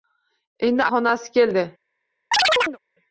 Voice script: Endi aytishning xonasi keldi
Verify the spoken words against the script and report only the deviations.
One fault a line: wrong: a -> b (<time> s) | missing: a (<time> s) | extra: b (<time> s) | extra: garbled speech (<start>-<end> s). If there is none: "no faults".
missing: aytishning (0.9 s)